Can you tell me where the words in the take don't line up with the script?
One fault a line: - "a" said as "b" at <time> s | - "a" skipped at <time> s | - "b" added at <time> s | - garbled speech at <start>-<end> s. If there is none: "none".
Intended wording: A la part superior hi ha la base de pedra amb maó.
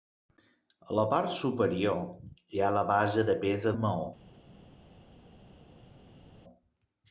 none